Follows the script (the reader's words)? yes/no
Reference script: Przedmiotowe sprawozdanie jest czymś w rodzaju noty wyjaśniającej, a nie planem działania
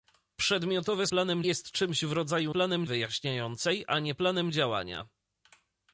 no